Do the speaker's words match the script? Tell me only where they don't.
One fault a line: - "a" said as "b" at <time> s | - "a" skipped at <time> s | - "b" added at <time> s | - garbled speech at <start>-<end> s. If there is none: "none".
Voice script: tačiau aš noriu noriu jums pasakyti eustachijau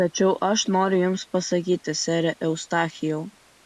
- "noriu" skipped at 1.0 s
- "sere" added at 2.0 s